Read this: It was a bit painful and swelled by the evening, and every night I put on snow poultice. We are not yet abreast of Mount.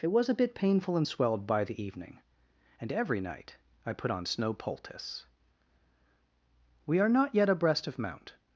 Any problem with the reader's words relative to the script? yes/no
no